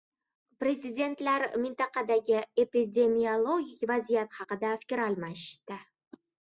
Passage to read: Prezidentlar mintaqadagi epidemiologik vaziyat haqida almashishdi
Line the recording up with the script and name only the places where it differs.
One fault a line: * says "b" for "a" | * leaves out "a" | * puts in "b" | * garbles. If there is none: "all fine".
* puts in "fikr"